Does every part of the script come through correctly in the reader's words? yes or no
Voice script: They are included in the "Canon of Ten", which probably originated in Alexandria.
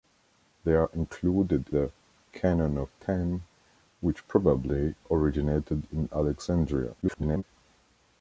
no